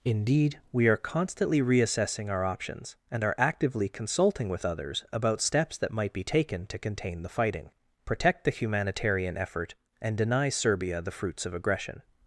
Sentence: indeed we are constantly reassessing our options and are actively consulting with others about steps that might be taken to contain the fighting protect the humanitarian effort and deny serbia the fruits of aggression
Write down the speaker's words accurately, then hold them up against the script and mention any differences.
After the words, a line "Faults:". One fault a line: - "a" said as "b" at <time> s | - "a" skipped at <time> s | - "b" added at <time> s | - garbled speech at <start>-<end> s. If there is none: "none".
indeed we are constantly reassessing our options and are actively consulting with others about steps that might be taken to contain the fighting protect the humanitarian effort and deny serbia the fruits of aggression
Faults:
none